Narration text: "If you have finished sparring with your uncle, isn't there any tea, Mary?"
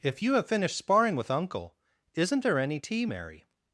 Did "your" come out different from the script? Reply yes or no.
yes